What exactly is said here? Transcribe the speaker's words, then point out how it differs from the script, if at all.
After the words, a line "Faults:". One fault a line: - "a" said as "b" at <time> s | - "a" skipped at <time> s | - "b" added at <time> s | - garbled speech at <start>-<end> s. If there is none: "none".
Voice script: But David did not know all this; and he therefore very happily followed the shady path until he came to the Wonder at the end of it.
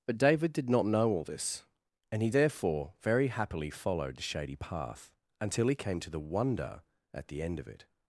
But David did not know all this; and he therefore very happily followed the shady path until he came to the Wonder at the end of it.
Faults:
none